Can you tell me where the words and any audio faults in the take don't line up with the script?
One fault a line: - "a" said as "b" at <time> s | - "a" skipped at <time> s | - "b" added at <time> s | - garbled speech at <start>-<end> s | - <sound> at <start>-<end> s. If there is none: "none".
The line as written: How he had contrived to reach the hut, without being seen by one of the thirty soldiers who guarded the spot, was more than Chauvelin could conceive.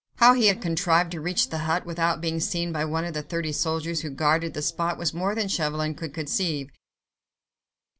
none